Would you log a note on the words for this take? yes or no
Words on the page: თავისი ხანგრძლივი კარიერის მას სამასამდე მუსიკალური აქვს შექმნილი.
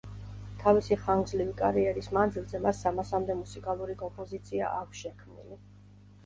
yes